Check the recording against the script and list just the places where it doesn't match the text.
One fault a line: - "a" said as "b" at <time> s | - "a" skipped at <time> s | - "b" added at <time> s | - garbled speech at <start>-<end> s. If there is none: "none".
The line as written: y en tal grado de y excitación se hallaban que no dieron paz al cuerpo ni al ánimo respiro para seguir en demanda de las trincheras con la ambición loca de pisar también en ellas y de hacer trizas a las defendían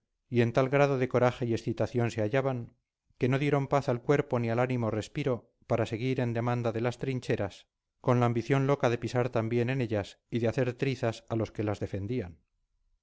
- "coraje" added at 1.1 s
- "los que" added at 11.3 s